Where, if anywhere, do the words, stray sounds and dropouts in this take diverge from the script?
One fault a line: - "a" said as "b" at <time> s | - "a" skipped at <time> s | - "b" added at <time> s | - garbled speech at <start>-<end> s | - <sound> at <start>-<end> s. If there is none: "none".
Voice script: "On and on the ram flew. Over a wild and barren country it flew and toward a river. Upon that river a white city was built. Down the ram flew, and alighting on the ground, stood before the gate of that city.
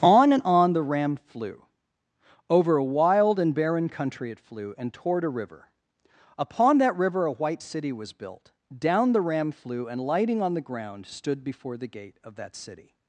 - "alighting" said as "lighting" at 10.0 s